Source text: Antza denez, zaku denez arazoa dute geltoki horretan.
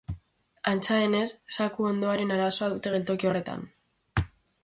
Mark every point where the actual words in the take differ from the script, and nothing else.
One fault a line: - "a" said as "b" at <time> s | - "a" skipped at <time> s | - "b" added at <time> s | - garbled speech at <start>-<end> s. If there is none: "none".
- "denez" said as "hondoaren" at 1.9 s